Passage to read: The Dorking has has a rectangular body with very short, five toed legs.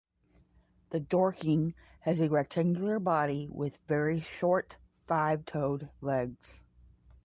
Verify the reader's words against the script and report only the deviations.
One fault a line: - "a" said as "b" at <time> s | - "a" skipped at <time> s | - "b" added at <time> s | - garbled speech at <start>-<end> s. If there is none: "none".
- "has" skipped at 2.2 s